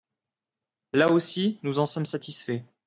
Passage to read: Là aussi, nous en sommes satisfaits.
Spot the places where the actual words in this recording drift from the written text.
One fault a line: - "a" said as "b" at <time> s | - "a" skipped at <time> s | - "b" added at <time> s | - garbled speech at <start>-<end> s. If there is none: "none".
none